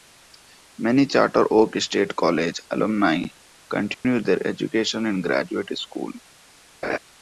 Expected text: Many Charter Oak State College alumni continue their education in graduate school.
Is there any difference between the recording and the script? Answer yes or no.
no